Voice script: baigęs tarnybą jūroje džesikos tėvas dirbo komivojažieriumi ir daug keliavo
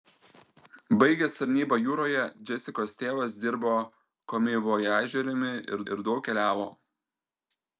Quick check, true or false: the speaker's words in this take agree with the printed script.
false